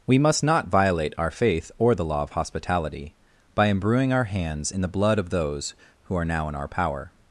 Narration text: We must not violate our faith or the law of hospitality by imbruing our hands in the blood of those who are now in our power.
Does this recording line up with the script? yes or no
yes